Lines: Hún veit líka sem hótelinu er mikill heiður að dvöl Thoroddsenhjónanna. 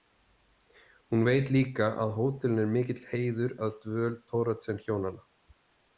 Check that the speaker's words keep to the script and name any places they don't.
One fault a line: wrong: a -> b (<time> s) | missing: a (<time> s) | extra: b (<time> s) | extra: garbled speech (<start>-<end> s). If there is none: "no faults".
wrong: sem -> að (2.1 s)